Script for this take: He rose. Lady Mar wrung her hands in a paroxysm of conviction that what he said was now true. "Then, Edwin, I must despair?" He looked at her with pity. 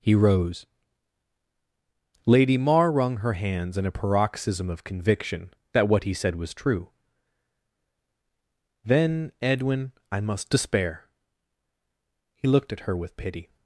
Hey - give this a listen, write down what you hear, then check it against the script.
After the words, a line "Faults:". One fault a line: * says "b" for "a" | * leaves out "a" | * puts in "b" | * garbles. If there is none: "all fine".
He rose. Lady Mar wrung her hands in a paroxysm of conviction that what he said was true. "Then, Edwin, I must despair?" He looked at her with pity.
Faults:
* leaves out "now"